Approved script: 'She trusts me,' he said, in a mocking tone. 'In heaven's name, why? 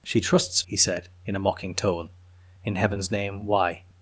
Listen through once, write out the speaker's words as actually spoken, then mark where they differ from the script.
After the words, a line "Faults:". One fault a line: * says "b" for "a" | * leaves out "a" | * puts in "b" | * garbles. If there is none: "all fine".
'She trusts,' he said, in a mocking tone. 'In heaven's name, why?
Faults:
* leaves out "me"